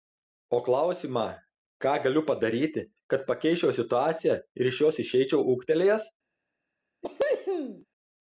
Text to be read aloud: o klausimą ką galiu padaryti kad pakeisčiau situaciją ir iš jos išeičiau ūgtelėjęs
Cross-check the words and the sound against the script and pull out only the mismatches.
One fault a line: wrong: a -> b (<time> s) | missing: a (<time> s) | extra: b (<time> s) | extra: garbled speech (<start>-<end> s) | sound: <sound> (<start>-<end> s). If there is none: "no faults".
sound: cough (7.0-7.9 s)